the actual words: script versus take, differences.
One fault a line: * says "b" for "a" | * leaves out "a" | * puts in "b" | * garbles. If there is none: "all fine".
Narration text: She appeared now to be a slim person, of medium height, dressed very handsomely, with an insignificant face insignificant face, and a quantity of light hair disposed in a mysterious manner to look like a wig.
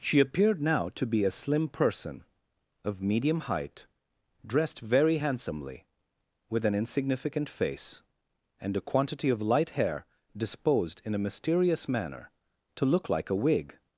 * leaves out "insignificant face"